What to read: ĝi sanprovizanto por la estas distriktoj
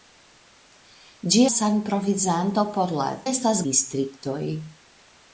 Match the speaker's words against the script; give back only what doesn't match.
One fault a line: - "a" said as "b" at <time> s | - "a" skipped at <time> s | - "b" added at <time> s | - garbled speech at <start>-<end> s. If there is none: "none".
none